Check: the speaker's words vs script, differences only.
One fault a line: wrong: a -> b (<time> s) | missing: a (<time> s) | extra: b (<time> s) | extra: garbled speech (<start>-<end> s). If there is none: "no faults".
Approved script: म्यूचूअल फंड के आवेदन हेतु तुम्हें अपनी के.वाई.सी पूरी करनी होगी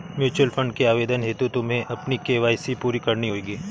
no faults